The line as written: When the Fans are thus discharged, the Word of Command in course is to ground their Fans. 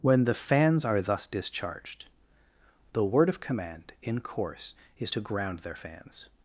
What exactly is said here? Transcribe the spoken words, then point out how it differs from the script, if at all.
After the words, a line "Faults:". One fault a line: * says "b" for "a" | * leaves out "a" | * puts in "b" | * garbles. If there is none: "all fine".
When the Fans are thus discharged, the Word of Command in course is to ground their Fans.
Faults:
all fine